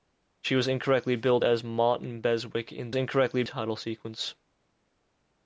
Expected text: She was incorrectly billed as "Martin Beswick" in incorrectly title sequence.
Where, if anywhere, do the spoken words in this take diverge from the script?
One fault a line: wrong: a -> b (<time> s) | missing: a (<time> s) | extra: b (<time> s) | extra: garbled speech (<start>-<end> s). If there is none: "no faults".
no faults